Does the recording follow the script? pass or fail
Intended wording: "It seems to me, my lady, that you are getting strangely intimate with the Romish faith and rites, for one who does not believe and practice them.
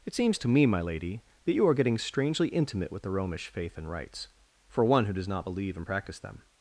pass